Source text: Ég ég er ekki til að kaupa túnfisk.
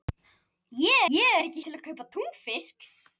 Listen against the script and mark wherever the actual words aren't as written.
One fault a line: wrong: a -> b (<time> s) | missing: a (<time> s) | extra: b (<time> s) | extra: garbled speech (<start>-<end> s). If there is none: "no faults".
no faults